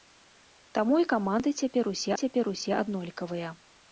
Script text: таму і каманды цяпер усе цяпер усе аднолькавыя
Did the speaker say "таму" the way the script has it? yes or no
yes